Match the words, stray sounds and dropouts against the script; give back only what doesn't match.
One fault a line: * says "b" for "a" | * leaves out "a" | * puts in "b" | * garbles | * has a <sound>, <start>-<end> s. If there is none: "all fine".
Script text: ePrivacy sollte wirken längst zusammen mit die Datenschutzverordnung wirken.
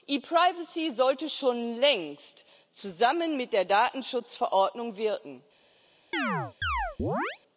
* says "schon" for "wirken"
* says "der" for "die"
* has a chirp, 6.1-7.4 s